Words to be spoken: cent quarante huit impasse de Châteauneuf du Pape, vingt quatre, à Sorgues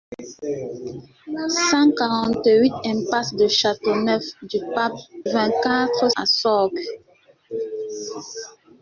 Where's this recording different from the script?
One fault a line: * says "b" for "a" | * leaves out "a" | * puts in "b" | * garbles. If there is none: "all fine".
all fine